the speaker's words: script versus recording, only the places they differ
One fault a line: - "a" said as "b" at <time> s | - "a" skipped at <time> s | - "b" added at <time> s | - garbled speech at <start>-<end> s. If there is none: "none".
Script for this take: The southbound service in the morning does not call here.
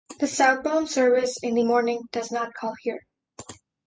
none